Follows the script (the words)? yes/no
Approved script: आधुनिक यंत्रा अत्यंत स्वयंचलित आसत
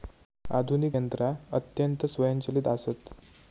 yes